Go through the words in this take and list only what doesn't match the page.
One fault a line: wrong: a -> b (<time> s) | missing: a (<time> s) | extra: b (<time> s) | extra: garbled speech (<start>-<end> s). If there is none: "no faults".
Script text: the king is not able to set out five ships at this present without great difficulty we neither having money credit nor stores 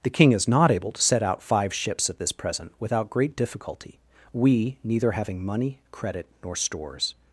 no faults